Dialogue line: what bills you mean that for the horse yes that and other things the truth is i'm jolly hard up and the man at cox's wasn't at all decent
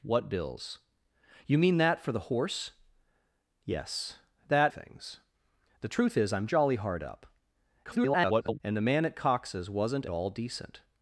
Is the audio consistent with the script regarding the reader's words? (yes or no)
no